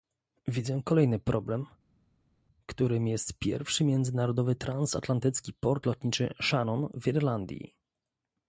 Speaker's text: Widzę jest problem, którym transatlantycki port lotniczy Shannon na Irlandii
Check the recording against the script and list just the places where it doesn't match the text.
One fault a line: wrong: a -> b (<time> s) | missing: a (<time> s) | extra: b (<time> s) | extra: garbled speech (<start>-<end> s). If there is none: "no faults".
wrong: jest -> kolejny (0.8 s)
extra: jest pierwszy międzynarodowy (3.1 s)
wrong: na -> w (6.9 s)